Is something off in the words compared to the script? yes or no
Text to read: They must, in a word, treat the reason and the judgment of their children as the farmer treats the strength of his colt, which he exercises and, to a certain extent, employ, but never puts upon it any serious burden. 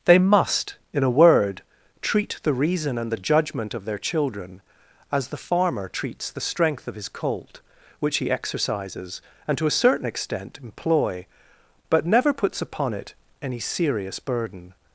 no